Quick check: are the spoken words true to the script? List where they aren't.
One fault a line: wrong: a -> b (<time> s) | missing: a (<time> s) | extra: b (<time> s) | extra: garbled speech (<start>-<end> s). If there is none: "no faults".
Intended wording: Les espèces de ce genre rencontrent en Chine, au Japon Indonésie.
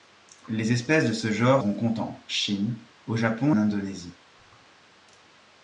no faults